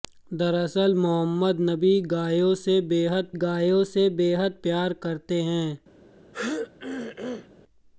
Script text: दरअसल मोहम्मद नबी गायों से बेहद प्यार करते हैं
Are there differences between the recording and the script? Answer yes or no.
yes